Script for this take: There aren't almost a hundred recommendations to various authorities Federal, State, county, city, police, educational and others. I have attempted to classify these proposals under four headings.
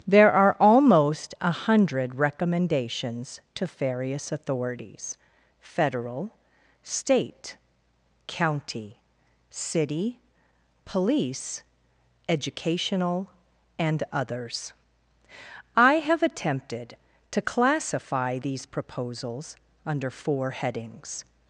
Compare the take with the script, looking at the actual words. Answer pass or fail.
fail